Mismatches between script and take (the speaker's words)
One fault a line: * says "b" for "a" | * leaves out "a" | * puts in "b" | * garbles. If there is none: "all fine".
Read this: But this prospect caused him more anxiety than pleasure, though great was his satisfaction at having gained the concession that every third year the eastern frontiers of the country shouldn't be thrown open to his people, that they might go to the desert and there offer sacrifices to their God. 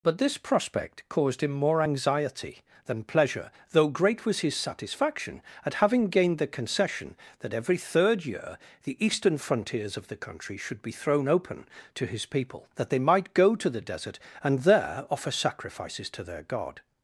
* says "should" for "shouldn't"